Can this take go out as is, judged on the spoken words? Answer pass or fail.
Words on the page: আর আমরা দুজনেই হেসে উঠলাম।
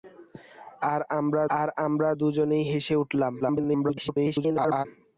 fail